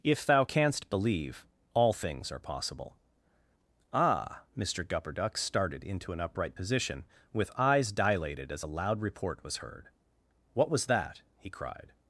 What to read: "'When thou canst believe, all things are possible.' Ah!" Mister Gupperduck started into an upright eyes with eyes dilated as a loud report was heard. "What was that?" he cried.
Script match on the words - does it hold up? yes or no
no